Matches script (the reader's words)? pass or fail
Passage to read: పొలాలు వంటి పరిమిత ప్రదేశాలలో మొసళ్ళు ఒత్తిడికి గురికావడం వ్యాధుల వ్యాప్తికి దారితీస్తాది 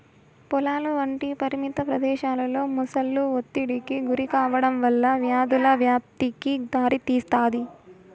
fail